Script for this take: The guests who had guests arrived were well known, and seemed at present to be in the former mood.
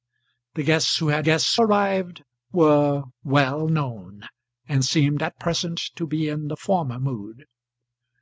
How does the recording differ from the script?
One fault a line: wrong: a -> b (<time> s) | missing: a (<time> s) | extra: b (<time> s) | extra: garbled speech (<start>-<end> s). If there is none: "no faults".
no faults